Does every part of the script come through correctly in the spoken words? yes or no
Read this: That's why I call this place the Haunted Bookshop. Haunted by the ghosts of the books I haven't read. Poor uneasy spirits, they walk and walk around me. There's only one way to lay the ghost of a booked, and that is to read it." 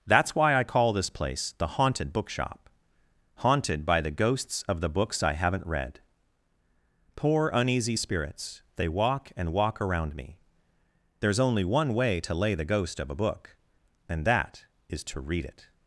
no